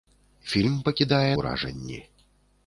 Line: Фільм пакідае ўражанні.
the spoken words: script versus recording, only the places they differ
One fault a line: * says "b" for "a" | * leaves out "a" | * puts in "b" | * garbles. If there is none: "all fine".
all fine